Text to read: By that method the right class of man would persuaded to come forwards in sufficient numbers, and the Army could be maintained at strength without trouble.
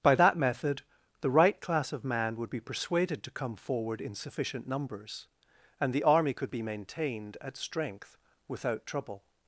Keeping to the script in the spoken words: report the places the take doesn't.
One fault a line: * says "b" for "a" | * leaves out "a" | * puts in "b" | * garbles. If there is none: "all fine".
* puts in "be"
* says "forward" for "forwards"